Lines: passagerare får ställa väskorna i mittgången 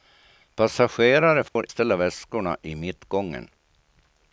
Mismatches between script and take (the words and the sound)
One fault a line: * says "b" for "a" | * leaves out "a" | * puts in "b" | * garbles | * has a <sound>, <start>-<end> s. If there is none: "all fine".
* has a dropout, 1.5-1.6 s